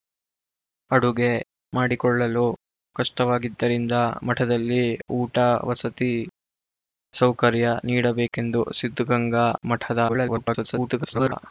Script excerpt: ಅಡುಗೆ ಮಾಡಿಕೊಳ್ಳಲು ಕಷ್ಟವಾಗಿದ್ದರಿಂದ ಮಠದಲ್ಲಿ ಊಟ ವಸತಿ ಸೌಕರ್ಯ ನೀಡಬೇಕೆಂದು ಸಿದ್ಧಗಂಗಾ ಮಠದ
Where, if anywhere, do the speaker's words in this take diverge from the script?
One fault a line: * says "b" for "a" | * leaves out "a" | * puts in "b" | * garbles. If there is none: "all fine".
* garbles